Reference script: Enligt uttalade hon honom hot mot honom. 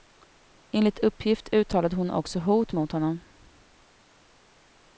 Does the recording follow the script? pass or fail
fail